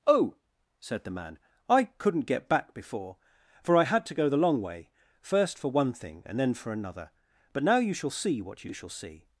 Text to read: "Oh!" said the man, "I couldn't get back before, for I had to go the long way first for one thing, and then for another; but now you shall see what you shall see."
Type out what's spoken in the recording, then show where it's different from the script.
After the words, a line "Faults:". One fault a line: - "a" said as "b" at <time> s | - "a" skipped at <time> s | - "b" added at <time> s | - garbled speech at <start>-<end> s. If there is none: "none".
"Oh!" said the man, "I couldn't get back before, for I had to go the long way first for one thing, and then for another; but now you shall see what you shall see."
Faults:
none